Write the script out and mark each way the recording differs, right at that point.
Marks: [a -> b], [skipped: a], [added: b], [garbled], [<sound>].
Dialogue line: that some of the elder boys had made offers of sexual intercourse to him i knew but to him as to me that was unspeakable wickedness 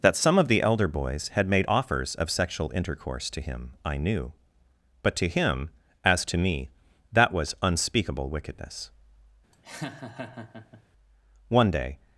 that some of the elder boys had made offers of sexual intercourse to him i knew but to him as to me that was unspeakable wickedness [laugh] [added: one day]